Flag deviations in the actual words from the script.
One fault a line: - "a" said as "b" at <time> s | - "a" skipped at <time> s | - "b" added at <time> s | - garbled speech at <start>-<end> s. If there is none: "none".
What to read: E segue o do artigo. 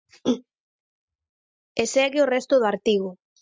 - "resto" added at 2.3 s